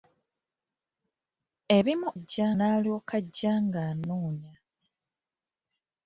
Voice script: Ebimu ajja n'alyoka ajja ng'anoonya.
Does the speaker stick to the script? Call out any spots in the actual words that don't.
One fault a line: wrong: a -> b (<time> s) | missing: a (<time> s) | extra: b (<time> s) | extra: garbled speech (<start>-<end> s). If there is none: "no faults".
no faults